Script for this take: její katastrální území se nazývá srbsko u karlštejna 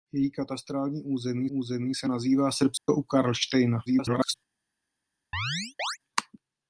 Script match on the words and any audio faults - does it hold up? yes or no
no